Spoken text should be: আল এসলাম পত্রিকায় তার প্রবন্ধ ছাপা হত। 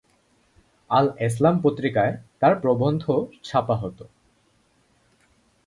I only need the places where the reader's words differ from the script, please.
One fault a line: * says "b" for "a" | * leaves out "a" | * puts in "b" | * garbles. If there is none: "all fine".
all fine